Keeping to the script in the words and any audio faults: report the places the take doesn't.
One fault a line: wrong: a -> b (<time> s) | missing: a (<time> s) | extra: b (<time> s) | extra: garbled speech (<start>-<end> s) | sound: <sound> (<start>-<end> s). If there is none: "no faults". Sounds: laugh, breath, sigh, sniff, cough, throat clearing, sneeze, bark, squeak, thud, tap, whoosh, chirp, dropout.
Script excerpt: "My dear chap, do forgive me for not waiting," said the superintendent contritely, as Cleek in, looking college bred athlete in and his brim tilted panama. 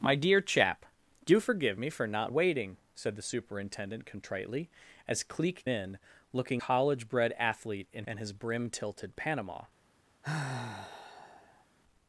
sound: sigh (10.2-11.6 s)